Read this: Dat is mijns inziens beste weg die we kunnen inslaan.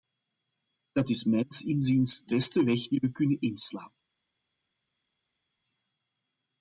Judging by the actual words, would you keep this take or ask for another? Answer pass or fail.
pass